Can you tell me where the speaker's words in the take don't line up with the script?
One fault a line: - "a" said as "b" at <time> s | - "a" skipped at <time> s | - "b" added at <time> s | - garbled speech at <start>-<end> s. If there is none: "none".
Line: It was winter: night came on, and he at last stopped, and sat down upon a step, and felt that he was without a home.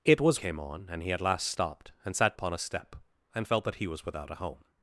- "winter night" skipped at 0.4 s
- "down" skipped at 2.3 s